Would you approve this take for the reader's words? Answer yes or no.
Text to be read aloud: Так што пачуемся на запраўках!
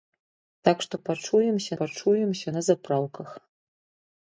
no